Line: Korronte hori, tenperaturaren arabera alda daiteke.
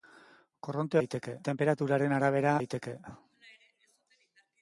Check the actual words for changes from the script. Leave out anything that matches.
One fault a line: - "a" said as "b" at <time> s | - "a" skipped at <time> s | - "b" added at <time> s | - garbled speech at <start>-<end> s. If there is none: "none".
- "hori" said as "daiteke" at 1.0 s
- "alda" skipped at 2.5 s